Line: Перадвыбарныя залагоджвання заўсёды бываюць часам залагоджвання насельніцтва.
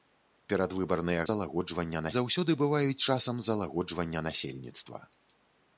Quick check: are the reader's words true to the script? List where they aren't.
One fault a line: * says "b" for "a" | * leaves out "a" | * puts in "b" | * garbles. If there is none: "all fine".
all fine